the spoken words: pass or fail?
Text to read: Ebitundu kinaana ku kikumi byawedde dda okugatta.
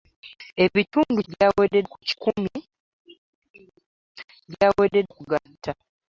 fail